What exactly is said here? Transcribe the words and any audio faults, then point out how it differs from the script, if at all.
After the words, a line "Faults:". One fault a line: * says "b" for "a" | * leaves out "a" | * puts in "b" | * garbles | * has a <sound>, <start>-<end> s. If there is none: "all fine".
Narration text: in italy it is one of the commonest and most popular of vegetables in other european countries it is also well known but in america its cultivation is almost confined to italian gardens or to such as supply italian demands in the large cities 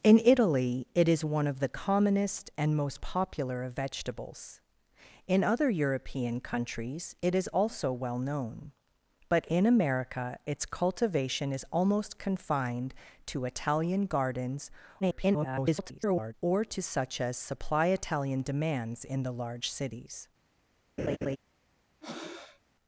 in italy it is one of the commonest and most popular of vegetables in other european countries it is also well known but in america its cultivation is almost confined to italian gardens [garbled] or to such as supply italian demands in the large cities
Faults:
* garbles
* has a laugh, 21.0-21.4 s
* has a breath, 22.0-22.6 s